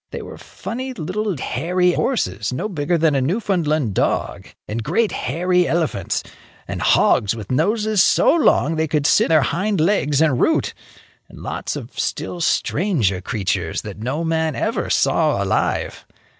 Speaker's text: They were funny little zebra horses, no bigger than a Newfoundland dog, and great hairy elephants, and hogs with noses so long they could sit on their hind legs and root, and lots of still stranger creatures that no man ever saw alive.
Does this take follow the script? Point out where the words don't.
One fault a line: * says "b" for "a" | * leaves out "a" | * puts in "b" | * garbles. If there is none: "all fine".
* says "hairy" for "zebra"
* leaves out "on"